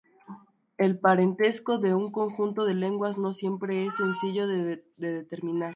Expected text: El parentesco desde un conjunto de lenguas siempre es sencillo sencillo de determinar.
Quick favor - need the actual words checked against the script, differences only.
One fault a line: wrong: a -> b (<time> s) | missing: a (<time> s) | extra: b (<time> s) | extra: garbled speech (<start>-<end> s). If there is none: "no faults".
wrong: desde -> de (1.8 s)
extra: no (3.2 s)
missing: sencillo (4.5 s)